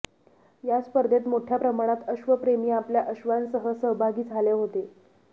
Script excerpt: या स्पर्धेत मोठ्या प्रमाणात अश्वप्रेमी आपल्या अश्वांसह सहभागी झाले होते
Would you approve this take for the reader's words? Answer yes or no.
yes